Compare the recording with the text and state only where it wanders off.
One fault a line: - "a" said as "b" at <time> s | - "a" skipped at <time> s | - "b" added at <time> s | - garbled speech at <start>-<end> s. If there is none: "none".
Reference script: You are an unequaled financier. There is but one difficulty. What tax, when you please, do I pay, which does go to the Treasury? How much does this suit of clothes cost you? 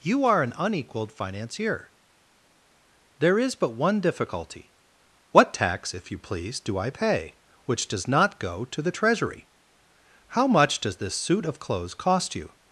- "when" said as "if" at 5.9 s
- "not" added at 8.1 s